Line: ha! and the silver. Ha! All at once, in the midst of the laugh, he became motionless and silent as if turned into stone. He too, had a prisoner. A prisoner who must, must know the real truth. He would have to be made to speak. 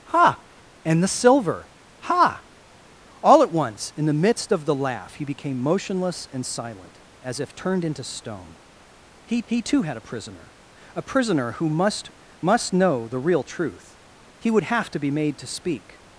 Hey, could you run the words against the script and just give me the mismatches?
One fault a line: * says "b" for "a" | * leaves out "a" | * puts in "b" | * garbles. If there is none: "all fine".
* puts in "he"